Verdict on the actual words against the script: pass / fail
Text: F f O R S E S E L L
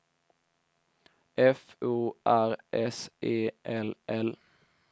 fail